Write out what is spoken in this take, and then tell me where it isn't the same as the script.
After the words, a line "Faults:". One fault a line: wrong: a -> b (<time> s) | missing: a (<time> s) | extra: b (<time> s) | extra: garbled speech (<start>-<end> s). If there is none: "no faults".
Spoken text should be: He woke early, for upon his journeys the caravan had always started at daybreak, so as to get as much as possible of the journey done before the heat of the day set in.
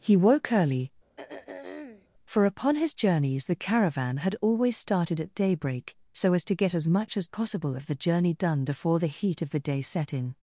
He woke early, for upon his journeys the caravan had always started at daybreak, so as to get as much as possible of the journey done before the heat of the day set in.
Faults:
no faults